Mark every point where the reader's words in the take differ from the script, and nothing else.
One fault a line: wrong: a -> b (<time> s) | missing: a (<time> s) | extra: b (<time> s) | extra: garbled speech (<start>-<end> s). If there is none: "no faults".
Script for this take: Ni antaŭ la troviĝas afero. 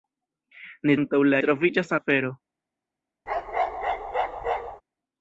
no faults